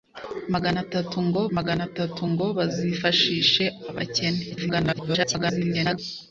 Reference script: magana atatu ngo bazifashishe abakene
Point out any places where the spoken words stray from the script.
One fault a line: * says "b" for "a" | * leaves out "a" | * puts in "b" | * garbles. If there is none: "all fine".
* puts in "magana atatu ngo"
* garbles